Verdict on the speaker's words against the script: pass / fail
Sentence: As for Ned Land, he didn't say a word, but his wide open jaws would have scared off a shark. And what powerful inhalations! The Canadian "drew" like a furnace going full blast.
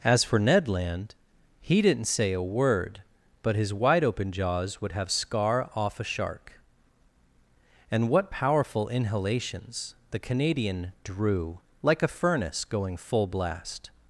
fail